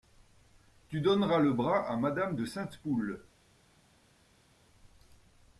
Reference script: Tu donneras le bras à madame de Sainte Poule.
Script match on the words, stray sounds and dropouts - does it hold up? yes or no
yes